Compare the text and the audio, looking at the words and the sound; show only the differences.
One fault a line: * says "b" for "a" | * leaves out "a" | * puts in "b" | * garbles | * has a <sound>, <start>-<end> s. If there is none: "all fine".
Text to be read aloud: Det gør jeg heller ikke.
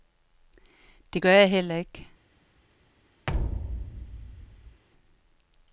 * has a thud, 3.3-4.8 s